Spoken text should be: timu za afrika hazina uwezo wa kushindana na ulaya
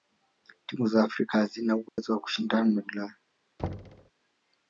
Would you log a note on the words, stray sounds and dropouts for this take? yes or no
yes